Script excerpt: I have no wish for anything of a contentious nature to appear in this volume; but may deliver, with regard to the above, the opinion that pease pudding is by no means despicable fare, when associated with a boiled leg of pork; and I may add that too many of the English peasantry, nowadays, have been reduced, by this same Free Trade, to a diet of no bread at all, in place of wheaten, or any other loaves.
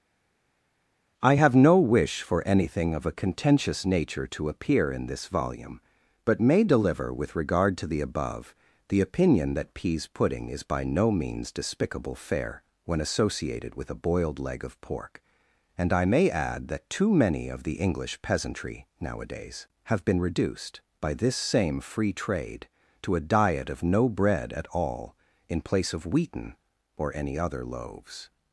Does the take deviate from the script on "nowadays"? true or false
false